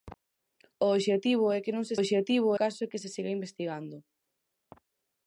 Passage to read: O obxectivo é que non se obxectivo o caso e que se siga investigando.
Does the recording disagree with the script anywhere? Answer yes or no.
no